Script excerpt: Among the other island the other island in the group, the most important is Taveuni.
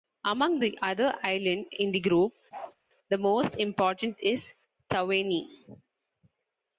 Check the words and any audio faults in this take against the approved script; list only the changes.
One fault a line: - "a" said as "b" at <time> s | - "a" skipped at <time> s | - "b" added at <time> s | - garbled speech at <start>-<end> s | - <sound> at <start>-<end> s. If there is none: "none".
- "the other island" skipped at 1.6 s
- bark at 2.5-2.8 s